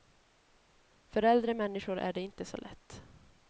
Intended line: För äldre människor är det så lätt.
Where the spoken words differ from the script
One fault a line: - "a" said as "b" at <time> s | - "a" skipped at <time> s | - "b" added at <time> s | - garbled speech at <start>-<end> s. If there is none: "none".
- "inte" added at 2.2 s